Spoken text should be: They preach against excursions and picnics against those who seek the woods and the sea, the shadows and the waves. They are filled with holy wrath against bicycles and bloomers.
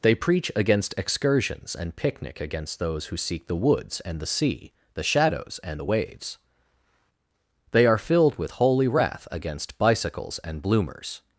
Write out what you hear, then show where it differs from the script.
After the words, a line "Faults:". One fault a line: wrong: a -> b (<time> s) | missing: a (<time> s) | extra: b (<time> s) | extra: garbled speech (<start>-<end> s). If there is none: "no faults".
They preach against excursions and picnic against those who seek the woods and the sea, the shadows and the waves. They are filled with holy wrath against bicycles and bloomers.
Faults:
wrong: picnics -> picnic (1.9 s)